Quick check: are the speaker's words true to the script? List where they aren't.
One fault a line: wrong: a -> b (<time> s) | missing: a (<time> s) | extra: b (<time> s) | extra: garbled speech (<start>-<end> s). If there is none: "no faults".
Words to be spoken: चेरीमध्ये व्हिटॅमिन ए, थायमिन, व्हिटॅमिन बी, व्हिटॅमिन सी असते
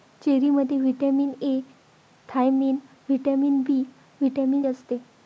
missing: सी (4.6 s)